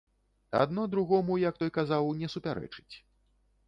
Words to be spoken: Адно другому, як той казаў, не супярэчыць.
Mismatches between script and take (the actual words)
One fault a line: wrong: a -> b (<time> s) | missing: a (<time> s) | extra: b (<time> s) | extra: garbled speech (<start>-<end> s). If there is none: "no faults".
no faults